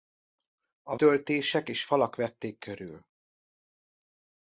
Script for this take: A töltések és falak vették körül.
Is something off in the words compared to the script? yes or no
no